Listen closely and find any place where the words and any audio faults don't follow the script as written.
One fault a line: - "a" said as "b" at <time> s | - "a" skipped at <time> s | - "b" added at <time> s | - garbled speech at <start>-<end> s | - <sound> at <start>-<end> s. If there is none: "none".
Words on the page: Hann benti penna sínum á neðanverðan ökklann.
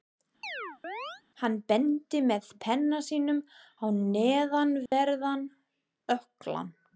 - chirp at 0.4-1.2 s
- "með" added at 2.3 s
- dropout at 4.9-4.9 s